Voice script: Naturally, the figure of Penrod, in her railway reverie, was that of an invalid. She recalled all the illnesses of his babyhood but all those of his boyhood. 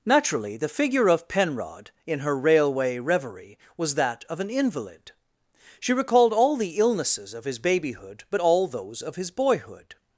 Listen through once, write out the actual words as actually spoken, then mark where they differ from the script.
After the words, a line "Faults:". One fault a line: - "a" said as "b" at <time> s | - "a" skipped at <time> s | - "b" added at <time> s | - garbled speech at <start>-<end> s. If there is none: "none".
Naturally, the figure of Penrod, in her railway reverie, was that of an invalid. She recalled all the illnesses of his babyhood but all those of his boyhood.
Faults:
none